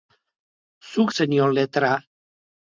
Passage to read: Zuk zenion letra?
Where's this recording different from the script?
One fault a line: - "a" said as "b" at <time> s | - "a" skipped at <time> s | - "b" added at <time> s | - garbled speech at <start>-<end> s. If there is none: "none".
none